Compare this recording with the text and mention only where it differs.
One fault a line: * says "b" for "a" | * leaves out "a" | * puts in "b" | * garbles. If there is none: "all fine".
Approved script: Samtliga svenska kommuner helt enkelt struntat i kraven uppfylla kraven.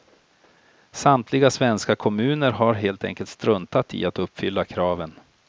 * puts in "har"
* says "att" for "kraven"